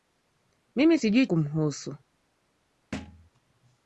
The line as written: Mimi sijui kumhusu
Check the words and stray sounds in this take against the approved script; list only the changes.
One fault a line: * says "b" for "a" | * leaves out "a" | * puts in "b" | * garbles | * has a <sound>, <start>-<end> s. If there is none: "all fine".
* has a thud, 2.9-3.3 s